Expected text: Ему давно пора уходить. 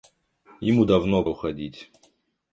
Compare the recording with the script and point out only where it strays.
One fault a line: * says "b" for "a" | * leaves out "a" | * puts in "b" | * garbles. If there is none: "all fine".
* leaves out "пора"